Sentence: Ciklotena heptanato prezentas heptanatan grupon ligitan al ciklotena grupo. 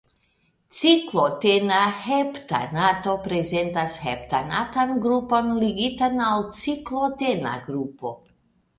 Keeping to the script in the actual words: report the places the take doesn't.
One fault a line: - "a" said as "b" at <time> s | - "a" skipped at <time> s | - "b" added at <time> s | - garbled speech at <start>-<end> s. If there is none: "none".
none